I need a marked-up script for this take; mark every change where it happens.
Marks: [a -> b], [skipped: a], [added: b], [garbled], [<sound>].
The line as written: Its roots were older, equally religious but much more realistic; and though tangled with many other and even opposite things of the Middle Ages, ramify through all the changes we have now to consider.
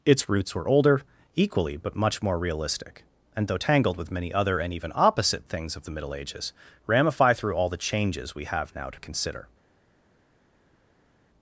Its roots were older, equally [skipped: religious] but much more realistic; and though tangled with many other and even opposite things of the Middle Ages, ramify through all the changes we have now to consider.